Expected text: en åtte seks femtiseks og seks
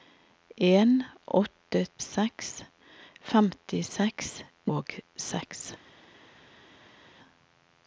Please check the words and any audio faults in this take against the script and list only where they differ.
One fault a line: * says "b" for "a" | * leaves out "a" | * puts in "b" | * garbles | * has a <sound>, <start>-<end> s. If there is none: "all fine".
all fine